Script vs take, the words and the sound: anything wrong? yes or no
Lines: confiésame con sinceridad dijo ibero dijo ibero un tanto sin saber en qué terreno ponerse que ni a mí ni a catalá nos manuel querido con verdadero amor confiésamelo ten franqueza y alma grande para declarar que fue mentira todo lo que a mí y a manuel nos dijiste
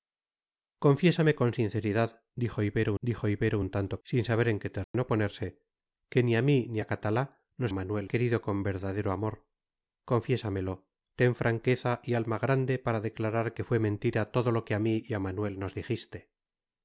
yes